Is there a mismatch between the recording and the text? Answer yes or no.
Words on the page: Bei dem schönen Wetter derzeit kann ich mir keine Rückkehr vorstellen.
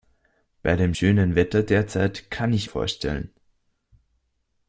yes